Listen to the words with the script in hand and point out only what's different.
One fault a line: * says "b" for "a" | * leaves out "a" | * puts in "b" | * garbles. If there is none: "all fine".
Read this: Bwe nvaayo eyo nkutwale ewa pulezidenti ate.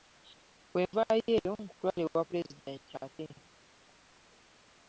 all fine